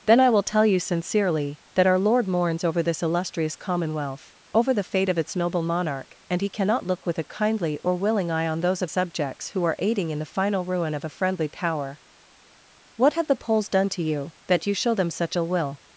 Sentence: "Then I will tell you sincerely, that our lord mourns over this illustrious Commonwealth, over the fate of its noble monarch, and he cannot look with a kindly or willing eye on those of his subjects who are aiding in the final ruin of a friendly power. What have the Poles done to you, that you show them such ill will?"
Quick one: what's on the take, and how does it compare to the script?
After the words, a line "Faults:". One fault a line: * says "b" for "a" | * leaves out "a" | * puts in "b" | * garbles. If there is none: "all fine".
"Then I will tell you sincerely, that our lord mourns over this illustrious Commonwealth, over the fate of its noble monarch, and he cannot look with a kindly or willing eye on those of subjects who are aiding in the final ruin of a friendly power. What have the Poles done to you, that you show them such ill will?"
Faults:
* leaves out "his"